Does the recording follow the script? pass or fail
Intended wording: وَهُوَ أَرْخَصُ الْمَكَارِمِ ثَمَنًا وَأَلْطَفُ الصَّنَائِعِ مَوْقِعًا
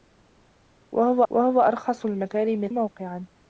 fail